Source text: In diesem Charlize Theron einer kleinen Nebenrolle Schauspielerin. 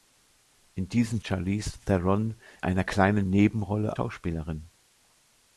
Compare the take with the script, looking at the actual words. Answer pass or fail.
pass